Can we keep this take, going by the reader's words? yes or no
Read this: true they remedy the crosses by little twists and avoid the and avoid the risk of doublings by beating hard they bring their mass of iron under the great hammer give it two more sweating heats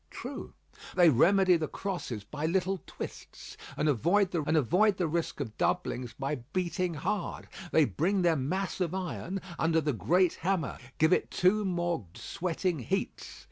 yes